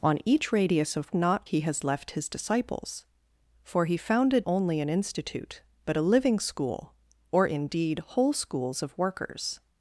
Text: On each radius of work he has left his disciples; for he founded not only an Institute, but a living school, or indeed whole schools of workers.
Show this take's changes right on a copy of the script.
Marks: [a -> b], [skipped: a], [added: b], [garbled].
On each radius of [work -> not] he has left his disciples; for he founded [skipped: not] only an Institute, but a living school, or indeed whole schools of workers.